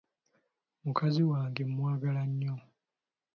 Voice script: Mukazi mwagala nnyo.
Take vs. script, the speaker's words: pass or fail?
fail